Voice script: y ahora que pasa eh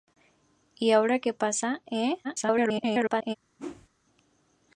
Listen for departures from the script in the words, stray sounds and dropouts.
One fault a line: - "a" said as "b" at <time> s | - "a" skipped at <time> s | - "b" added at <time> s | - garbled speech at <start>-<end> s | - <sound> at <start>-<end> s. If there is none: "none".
- garbled speech at 2.2-3.4 s
- whoosh at 3.6-3.9 s